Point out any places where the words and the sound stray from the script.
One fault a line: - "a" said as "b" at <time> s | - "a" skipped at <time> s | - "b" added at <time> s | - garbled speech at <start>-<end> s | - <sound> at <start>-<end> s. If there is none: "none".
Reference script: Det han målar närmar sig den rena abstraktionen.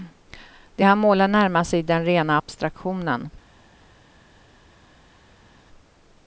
none